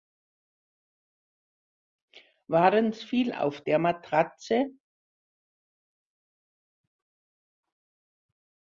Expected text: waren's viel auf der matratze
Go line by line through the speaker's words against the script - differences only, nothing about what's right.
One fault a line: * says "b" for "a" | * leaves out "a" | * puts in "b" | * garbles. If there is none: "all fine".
all fine